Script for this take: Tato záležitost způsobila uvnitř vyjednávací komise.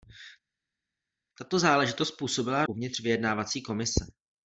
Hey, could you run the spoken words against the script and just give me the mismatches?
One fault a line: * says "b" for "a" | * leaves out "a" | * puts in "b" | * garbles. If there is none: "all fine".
all fine